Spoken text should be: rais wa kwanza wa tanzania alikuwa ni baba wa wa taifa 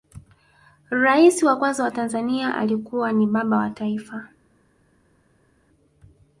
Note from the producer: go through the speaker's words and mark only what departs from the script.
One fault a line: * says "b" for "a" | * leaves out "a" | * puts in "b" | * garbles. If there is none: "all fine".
* leaves out "wa"